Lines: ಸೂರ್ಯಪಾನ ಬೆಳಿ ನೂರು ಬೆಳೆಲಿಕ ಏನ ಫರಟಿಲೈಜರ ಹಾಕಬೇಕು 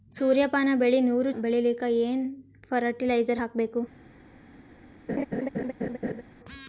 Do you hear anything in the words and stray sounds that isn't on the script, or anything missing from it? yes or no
yes